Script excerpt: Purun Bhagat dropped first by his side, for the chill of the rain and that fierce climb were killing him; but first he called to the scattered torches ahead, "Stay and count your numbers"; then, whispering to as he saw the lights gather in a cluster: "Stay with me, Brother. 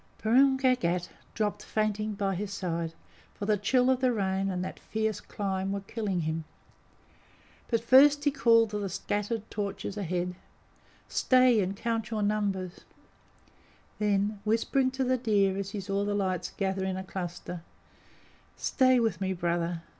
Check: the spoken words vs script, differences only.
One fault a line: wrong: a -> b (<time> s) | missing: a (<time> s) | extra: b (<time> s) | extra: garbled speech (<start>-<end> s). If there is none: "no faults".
wrong: first -> fainting (1.6 s)
extra: the deer (15.0 s)